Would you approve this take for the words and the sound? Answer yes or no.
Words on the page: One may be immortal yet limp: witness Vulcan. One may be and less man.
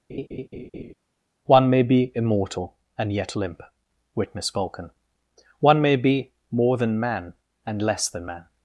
no